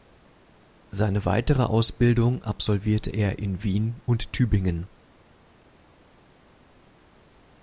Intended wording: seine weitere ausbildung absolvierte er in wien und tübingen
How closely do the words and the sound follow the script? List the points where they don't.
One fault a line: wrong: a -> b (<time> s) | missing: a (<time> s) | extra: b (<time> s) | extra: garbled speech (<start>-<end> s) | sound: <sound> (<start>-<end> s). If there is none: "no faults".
no faults